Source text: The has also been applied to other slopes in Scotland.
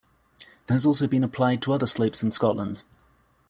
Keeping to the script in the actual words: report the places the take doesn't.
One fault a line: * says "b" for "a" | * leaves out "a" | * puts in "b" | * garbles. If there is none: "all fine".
all fine